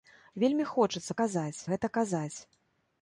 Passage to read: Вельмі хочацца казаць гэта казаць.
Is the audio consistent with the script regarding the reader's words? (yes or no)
yes